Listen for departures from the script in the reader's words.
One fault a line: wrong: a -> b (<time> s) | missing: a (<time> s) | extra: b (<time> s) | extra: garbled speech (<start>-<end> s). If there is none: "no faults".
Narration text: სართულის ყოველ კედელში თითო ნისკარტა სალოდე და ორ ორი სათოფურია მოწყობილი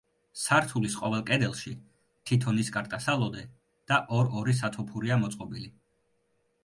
no faults